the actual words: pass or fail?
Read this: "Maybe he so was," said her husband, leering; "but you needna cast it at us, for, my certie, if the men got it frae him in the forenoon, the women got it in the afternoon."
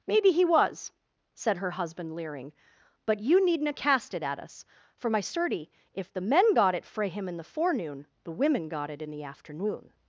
fail